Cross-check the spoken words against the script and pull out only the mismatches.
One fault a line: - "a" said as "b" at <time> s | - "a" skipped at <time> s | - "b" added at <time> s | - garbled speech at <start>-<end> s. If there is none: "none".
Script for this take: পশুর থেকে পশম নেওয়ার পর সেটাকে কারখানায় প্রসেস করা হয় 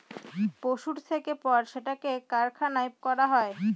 - "পশম নেওয়ার" skipped at 1.3 s
- "প্রসেস" skipped at 2.9 s